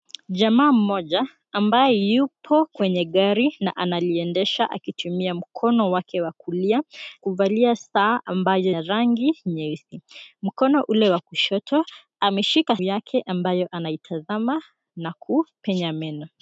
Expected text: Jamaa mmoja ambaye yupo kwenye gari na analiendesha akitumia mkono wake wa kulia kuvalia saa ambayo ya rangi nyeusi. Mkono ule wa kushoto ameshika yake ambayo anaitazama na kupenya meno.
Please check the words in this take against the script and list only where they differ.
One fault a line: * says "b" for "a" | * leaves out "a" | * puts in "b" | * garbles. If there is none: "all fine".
all fine